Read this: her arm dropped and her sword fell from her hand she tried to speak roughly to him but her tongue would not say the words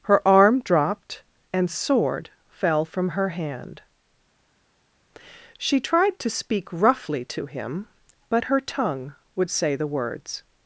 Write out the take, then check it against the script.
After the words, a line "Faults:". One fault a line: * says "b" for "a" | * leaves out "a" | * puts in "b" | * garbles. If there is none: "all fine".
her arm dropped and sword fell from her hand she tried to speak roughly to him but her tongue would say the words
Faults:
* leaves out "her"
* leaves out "not"